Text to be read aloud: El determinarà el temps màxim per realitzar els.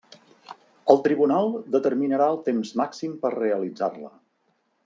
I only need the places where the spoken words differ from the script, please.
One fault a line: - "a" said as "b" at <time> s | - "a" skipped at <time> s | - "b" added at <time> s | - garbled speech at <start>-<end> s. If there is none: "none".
- "tribunal" added at 1.1 s
- "els" said as "la" at 4.1 s